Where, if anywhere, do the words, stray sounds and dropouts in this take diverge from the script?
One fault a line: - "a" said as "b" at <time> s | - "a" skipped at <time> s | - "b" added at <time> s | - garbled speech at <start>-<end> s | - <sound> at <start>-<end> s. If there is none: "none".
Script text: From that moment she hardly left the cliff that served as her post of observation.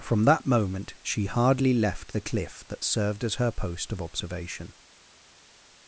none